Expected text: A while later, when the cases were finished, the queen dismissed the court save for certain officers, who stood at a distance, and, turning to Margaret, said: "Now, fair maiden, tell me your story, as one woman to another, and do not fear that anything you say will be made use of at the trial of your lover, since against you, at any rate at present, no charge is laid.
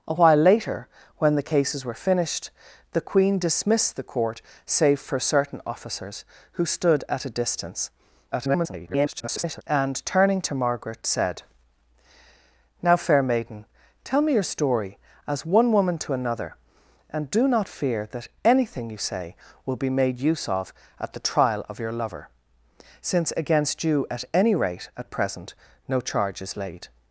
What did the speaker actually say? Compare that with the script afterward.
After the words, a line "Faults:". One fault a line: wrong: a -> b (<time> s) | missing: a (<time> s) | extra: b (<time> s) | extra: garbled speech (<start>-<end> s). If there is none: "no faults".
A while later, when the cases were finished, the queen dismissed the court save for certain officers, who stood at a distance, [garbled] and, turning to Margaret, said: "Now, fair maiden, tell me your story, as one woman to another, and do not fear that anything you say will be made use of at the trial of your lover, since against you, at any rate at present, no charge is laid.
Faults:
extra: garbled speech (8.3-9.6 s)